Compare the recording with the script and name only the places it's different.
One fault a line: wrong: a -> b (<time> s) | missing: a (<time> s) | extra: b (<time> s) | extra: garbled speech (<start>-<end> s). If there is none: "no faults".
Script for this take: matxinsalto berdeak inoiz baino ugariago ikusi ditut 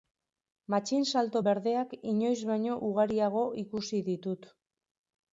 no faults